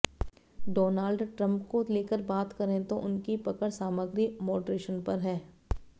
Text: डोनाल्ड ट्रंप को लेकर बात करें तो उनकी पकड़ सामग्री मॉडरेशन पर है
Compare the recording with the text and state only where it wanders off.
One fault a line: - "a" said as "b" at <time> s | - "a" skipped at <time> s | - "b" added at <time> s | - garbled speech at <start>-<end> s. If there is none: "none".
none